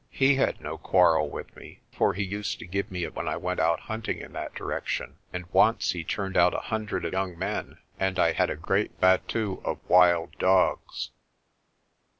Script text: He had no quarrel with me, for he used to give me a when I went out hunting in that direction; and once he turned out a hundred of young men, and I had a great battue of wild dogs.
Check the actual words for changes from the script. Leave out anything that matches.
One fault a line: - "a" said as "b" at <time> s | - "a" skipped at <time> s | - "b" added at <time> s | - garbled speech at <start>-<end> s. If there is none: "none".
none